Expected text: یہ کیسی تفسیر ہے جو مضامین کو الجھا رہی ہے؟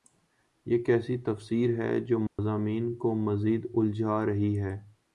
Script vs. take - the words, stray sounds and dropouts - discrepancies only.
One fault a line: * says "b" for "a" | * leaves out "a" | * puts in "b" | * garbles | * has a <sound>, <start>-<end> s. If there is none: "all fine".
* has a dropout, 2.3-2.4 s
* puts in "مزید"